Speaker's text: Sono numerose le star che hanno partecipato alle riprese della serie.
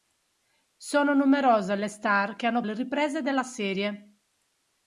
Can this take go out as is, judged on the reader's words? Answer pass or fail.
fail